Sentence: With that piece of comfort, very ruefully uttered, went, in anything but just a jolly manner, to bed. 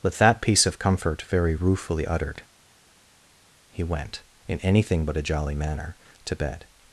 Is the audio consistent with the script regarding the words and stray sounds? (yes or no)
no